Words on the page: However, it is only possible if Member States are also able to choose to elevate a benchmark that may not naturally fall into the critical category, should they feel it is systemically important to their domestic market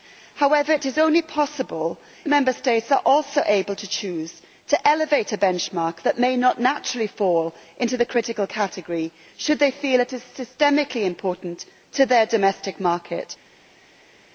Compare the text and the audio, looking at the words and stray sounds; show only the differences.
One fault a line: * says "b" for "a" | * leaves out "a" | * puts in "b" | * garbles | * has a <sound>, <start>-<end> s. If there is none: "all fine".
* leaves out "if"